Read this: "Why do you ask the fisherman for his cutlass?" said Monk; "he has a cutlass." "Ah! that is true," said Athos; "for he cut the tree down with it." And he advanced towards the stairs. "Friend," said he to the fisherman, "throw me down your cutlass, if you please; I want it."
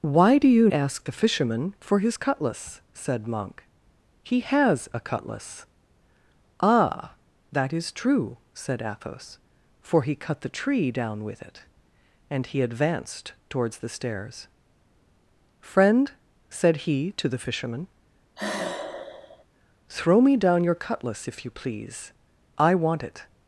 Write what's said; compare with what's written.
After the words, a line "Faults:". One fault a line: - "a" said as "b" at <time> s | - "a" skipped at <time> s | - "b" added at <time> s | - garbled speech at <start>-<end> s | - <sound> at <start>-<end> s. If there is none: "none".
"Why do you ask the fisherman for his cutlass?" said Monk; "he has a cutlass." "Ah! that is true," said Athos; "for he cut the tree down with it." And he advanced towards the stairs. "Friend," said he to the fisherman, "throw me down your cutlass, if you please; I want it."
Faults:
- sigh at 18.4-19.4 s